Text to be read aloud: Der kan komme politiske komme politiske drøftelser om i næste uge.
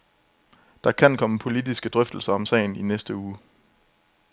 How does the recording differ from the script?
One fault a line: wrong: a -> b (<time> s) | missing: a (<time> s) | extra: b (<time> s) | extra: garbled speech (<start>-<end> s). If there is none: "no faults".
missing: komme politiske (1.9 s)
extra: sagen (2.4 s)